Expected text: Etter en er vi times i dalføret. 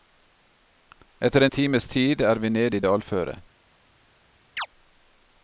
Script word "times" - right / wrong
wrong